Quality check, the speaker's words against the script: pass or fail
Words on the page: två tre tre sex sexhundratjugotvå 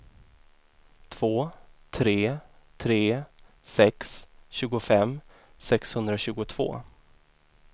fail